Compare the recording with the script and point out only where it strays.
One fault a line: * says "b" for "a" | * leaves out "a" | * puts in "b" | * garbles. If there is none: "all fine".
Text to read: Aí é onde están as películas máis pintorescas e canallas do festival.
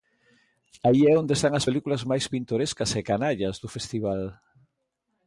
all fine